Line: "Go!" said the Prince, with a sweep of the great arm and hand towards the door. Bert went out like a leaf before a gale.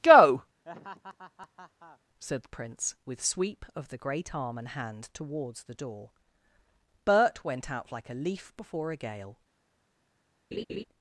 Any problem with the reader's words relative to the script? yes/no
yes